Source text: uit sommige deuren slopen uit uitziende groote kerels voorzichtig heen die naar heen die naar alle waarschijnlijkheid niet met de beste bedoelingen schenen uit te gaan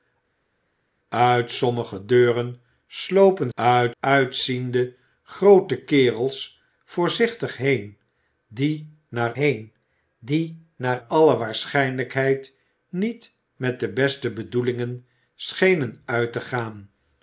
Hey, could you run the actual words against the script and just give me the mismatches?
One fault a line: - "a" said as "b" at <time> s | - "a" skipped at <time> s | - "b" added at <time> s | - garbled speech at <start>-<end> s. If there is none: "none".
none